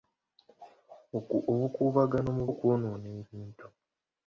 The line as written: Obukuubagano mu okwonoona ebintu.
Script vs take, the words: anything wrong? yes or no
no